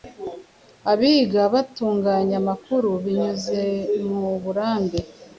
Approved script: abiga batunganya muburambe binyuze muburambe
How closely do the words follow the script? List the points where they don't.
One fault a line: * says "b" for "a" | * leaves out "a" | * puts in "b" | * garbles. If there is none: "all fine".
* says "amakuru" for "muburambe"